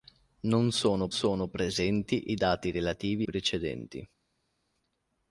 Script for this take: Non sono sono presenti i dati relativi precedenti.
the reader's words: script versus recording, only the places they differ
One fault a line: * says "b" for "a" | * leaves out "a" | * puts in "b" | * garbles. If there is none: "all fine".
all fine